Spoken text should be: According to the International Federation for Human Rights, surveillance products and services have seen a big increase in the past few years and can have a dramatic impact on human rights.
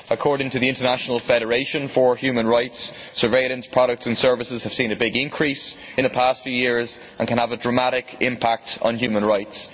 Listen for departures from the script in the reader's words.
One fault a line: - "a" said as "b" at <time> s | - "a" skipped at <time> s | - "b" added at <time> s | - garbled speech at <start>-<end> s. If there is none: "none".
none